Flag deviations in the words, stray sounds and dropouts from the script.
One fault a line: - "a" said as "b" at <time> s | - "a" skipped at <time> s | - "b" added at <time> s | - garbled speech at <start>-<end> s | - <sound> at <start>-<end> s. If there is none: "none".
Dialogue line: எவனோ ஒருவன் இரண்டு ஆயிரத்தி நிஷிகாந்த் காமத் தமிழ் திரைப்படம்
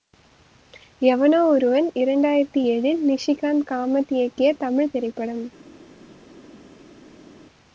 - "ஏழில்" added at 2.7 s
- "இயக்கிய" added at 4.1 s